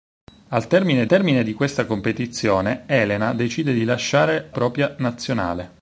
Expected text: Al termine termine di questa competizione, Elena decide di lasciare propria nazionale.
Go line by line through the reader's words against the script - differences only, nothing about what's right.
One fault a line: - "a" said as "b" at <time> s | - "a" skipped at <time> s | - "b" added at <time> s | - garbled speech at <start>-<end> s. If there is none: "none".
none